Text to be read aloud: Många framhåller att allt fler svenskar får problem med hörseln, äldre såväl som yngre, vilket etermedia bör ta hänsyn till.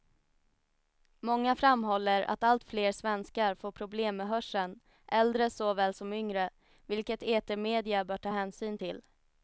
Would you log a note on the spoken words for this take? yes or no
no